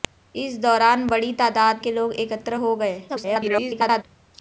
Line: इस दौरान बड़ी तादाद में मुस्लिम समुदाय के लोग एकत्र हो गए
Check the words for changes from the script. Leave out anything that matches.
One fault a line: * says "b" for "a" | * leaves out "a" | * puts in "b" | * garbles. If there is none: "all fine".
* leaves out "में मुस्लिम समुदाय"
* garbles